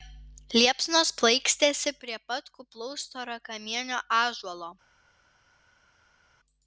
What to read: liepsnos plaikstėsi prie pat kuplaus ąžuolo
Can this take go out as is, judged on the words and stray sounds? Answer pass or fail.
fail